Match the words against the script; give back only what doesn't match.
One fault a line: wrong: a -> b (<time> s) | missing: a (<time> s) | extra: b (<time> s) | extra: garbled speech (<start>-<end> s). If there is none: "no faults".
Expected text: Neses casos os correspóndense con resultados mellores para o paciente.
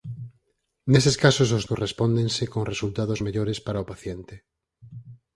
no faults